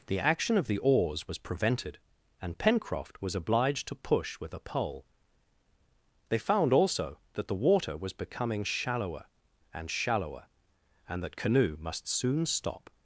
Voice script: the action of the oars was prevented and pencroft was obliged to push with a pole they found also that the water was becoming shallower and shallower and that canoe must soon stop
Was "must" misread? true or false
false